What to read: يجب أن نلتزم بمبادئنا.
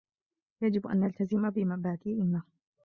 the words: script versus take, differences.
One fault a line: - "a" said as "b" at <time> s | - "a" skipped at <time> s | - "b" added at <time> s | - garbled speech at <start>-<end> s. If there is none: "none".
none